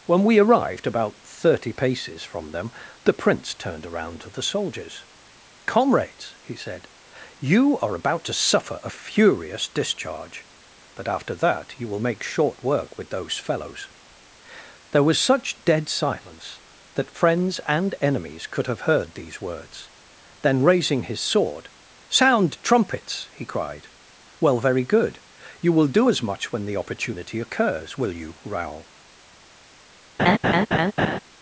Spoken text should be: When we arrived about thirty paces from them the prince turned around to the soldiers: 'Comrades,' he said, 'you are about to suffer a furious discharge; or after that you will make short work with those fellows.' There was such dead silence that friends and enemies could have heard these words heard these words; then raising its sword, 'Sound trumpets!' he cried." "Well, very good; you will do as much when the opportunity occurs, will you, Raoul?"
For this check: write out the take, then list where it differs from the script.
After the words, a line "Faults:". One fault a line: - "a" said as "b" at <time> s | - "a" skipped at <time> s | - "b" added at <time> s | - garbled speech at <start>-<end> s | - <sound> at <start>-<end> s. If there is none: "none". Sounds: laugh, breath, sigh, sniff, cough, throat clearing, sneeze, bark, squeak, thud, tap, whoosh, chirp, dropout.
When we arrived about thirty paces from them the prince turned around to the soldiers: 'Comrades,' he said, 'you are about to suffer a furious discharge; but after that you will make short work with those fellows.' There was such dead silence that friends and enemies could have heard these words; then raising his sword, 'Sound trumpets!' he cried." "Well, very good; you will do as much when the opportunity occurs, will you, Raoul?"
Faults:
- "or" said as "but" at 10.9 s
- "heard these words" skipped at 19.9 s
- "its" said as "his" at 21.0 s
- laugh at 30.2-31.2 s